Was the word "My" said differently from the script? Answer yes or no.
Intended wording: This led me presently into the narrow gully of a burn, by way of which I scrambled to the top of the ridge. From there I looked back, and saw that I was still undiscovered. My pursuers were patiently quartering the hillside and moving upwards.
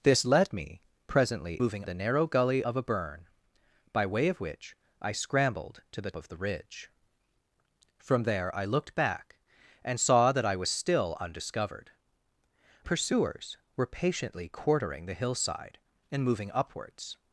yes